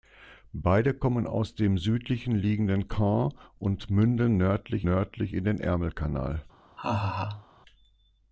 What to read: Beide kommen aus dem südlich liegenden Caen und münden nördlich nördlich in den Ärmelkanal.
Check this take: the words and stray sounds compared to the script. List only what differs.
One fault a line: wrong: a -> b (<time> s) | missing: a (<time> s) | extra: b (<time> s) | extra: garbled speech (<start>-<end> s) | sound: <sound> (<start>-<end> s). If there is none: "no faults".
sound: laugh (6.8-7.5 s)